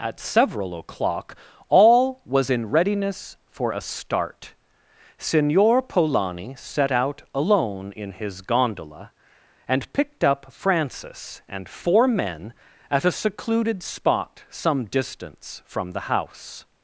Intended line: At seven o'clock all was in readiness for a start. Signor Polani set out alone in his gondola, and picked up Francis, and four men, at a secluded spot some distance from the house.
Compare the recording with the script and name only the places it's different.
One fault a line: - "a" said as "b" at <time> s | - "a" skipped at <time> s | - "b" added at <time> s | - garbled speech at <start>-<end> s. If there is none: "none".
- "seven" said as "several" at 0.2 s